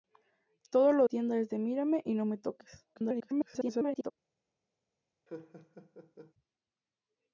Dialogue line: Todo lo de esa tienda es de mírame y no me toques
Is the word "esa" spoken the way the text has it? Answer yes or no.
no